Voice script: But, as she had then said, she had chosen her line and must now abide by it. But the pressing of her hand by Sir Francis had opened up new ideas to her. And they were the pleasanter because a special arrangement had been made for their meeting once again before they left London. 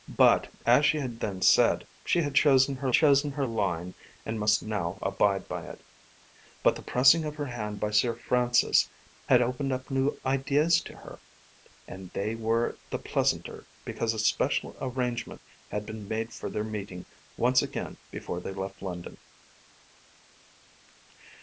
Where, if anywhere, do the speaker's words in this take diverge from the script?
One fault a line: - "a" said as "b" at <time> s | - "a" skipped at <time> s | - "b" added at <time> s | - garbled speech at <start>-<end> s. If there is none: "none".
- "chosen her" added at 2.9 s